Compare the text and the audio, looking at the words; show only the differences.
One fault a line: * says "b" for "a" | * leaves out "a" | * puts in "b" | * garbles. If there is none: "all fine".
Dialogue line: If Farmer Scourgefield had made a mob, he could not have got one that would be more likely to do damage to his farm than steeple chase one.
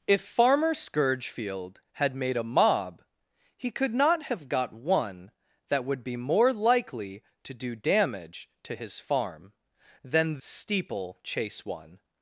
all fine